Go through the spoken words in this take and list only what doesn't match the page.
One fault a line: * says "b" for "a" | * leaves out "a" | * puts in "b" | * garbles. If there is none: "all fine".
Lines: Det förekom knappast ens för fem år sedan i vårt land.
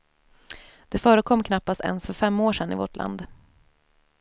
all fine